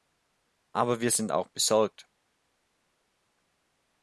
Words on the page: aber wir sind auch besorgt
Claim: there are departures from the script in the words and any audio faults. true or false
false